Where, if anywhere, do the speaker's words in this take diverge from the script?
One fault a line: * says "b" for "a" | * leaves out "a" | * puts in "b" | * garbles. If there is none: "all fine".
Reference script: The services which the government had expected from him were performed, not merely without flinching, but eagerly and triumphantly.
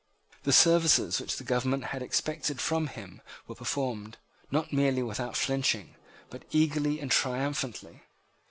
all fine